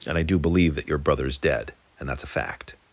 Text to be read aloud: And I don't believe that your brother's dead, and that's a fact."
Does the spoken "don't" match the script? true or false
false